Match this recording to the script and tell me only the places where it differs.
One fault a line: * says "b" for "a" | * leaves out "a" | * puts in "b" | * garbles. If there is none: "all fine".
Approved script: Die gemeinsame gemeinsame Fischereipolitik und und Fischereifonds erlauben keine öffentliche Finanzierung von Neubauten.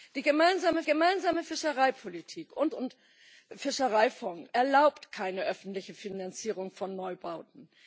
all fine